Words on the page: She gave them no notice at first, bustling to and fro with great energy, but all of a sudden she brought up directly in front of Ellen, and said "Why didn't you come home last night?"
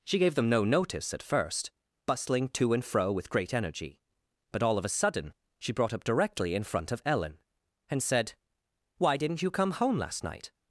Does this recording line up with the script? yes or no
yes